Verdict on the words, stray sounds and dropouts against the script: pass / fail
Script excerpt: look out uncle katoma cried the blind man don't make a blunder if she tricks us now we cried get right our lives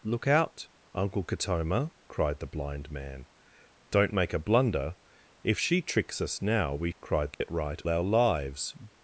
fail